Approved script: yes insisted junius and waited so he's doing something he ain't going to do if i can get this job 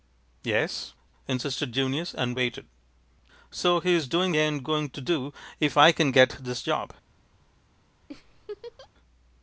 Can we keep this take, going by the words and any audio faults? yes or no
no